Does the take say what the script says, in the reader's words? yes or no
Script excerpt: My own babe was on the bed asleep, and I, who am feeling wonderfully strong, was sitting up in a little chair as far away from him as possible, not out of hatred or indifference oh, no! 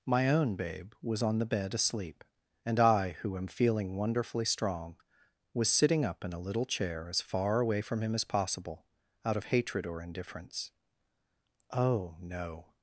no